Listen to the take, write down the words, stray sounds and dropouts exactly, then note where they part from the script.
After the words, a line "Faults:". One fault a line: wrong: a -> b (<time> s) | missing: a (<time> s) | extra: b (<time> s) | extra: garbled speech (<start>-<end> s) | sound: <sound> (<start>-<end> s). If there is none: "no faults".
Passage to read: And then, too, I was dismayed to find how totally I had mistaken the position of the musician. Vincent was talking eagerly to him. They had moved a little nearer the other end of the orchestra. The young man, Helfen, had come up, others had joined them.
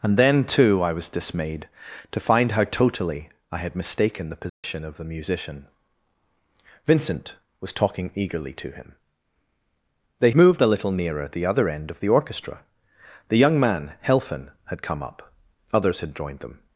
And then, too, I was dismayed to find how totally I had mistaken the position of the musician. Vincent was talking eagerly to him. They moved a little nearer the other end of the orchestra. The young man, Helfen, had come up, others had joined them.
Faults:
sound: dropout (4.5-4.6 s)
missing: had (10.3 s)